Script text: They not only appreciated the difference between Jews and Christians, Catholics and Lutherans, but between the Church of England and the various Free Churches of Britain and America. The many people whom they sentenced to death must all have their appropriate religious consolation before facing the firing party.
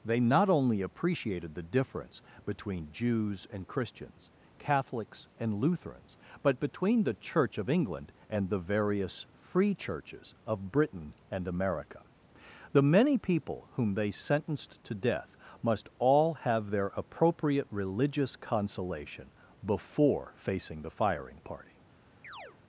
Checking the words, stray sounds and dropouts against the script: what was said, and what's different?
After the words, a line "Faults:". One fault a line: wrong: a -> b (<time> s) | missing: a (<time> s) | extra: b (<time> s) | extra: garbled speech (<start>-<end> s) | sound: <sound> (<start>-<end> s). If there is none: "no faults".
They not only appreciated the difference between Jews and Christians, Catholics and Lutherans, but between the Church of England and the various Free Churches of Britain and America. The many people whom they sentenced to death must all have their appropriate religious consolation before facing the firing party.
Faults:
sound: chirp (22.2-22.6 s)